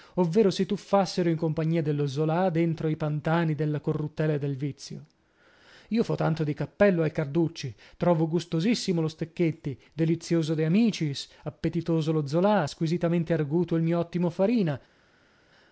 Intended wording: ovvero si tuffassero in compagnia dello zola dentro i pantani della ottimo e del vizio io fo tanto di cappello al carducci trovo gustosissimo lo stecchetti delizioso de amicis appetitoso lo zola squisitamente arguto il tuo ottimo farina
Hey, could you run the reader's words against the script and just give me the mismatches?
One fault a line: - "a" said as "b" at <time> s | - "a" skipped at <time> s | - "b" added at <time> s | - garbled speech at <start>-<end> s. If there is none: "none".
- "ottimo" said as "corruttela" at 3.8 s
- "tuo" said as "mio" at 13.8 s